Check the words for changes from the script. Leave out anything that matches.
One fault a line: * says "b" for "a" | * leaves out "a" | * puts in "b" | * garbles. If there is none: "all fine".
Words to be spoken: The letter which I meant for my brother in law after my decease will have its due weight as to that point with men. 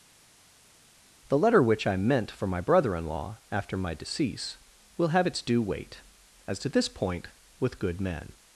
* says "this" for "that"
* puts in "good"